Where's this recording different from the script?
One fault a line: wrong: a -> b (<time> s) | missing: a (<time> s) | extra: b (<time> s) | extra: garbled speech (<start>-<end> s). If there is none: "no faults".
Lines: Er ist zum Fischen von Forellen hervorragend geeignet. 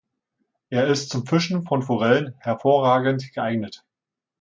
no faults